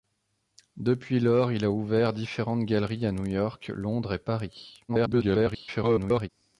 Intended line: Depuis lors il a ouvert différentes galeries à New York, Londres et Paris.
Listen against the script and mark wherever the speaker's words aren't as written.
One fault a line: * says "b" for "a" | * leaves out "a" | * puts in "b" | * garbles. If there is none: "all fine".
* garbles